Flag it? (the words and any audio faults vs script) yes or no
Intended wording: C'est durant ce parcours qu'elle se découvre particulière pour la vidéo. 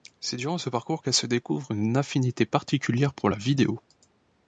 yes